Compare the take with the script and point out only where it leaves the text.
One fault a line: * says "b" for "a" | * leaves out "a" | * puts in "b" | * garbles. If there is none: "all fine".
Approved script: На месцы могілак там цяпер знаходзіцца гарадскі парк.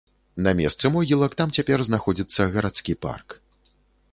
all fine